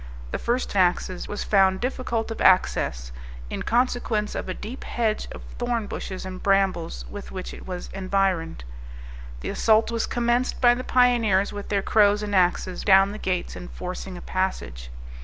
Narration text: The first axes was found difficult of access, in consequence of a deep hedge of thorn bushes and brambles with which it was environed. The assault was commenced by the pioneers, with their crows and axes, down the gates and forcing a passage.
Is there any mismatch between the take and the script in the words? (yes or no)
no